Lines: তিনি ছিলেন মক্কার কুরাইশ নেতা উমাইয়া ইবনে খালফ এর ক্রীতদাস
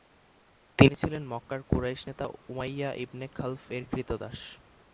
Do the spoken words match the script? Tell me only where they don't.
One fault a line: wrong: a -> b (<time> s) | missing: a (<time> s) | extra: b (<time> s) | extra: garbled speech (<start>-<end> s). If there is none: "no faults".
no faults